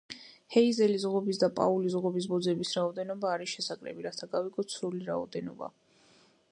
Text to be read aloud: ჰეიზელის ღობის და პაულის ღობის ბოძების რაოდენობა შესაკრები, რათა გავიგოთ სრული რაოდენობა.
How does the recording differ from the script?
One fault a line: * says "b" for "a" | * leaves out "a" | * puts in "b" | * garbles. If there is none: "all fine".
* puts in "არის"